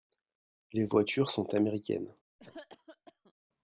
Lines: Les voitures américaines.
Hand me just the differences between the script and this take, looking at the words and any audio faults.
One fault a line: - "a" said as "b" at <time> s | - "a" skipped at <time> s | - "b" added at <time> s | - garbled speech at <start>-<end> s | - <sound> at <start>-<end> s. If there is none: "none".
- "sont" added at 1.3 s
- cough at 2.4-3.3 s